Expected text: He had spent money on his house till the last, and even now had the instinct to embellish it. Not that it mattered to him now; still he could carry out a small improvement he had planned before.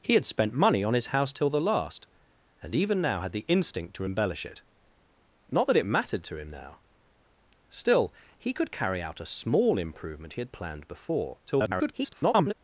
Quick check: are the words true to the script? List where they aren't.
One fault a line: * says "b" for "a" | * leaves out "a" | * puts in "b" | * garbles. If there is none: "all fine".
* garbles